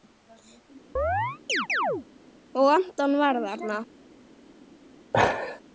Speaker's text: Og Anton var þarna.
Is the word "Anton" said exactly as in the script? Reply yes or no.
yes